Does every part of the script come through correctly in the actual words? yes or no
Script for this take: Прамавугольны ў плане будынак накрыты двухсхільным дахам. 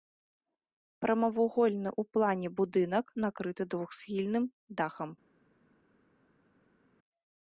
yes